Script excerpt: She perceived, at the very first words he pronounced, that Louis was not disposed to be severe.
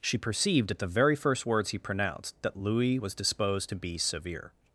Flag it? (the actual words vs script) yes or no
yes